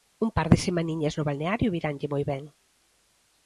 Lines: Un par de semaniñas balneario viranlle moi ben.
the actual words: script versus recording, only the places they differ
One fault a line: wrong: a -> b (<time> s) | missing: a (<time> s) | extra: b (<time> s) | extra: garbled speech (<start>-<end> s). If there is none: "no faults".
extra: no (1.2 s)